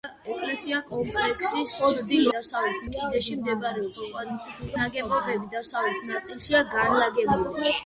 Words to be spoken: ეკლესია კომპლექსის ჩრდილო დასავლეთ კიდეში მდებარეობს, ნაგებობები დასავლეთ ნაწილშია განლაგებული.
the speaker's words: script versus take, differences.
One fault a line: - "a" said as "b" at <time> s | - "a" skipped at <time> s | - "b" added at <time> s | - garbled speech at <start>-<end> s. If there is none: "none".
none